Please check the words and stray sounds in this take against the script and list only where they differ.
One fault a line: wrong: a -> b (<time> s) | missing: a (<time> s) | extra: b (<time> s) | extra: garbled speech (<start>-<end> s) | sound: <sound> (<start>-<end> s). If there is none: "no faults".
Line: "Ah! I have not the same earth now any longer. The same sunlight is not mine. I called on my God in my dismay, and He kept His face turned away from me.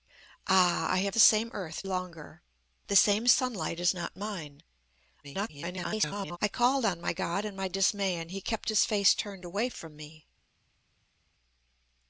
missing: not (1.1 s)
missing: now any (1.8 s)
extra: garbled speech (5.2-6.4 s)